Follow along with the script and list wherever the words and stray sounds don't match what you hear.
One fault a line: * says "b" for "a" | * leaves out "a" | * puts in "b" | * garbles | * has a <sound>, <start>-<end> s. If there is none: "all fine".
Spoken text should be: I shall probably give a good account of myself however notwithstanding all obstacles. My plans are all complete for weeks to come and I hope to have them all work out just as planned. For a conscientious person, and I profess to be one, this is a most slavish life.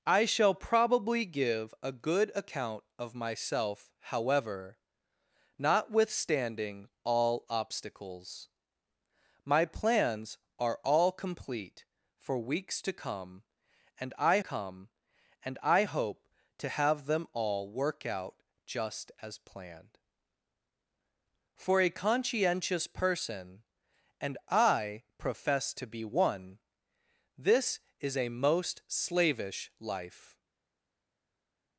* puts in "come and I"